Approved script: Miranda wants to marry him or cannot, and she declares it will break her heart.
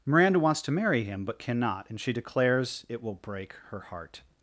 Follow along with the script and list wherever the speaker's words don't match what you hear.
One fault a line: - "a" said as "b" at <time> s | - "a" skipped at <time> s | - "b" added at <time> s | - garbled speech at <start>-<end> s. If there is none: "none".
- "or" said as "but" at 1.2 s